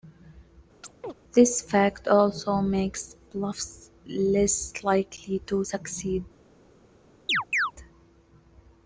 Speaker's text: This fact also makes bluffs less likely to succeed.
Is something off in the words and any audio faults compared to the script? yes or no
yes